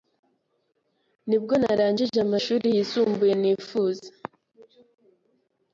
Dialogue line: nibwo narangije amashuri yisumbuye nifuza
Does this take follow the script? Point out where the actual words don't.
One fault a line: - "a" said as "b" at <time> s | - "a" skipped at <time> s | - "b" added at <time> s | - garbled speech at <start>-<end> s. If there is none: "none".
none